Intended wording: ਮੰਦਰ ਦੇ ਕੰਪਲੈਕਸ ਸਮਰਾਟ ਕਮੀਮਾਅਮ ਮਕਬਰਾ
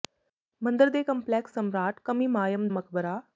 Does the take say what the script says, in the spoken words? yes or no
yes